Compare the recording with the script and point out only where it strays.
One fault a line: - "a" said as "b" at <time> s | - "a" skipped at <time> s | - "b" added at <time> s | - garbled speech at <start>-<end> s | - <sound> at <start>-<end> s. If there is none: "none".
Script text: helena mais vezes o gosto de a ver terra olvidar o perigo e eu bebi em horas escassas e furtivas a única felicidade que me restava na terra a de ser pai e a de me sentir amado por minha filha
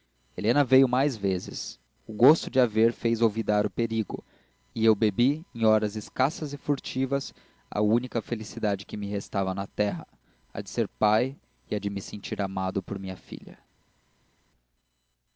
- "veio" added at 0.6 s
- "terra" said as "fez" at 2.9 s